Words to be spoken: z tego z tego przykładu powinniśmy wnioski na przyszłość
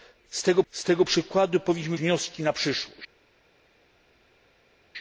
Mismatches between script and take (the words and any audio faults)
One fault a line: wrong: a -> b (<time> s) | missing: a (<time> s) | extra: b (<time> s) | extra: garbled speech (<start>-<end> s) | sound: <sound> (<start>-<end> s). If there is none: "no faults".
no faults